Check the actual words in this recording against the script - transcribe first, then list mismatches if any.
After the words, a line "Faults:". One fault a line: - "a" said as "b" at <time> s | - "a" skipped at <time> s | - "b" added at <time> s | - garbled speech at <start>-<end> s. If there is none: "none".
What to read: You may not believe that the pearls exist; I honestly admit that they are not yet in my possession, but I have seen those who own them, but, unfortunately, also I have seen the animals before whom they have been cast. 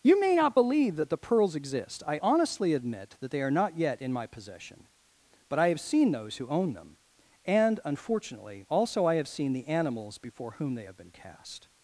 You may not believe that the pearls exist; I honestly admit that they are not yet in my possession, but I have seen those who own them, and, unfortunately, also I have seen the animals before whom they have been cast.
Faults:
- "but" said as "and" at 7.5 s